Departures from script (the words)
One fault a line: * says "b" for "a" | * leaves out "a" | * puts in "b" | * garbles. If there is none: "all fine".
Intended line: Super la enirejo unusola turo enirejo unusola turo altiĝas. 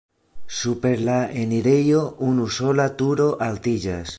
* leaves out "enirejo unusola turo"